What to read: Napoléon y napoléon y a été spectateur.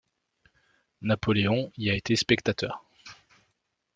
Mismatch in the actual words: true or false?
true